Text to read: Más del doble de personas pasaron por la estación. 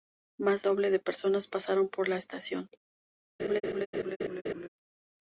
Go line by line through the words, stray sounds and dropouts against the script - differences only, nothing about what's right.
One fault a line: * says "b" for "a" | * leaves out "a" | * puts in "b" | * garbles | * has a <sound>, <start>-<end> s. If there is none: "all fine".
* leaves out "del"
* has a laugh, 3.4-4.7 s